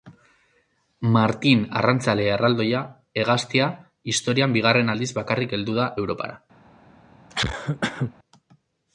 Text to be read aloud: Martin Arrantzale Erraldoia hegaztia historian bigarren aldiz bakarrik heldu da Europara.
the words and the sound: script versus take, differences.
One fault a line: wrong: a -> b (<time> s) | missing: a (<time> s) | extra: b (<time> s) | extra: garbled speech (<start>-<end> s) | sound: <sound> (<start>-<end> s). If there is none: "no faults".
sound: cough (7.3-8.1 s)